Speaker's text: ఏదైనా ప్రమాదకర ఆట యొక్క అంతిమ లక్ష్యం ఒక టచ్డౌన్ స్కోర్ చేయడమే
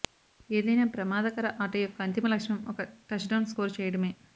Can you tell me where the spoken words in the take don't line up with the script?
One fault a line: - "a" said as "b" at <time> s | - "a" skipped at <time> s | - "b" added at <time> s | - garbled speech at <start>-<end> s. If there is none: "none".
none